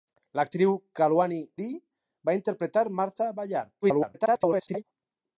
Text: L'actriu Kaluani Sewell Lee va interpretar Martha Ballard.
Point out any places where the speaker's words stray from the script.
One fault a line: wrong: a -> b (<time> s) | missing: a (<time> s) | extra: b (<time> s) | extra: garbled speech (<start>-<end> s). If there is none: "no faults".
missing: Sewell (1.4 s)
extra: garbled speech (3.8-4.8 s)